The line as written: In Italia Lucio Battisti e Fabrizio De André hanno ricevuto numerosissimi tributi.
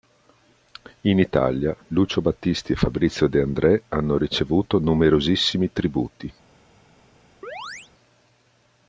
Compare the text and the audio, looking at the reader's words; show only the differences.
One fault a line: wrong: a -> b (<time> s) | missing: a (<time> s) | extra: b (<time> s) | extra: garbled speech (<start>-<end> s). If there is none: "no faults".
no faults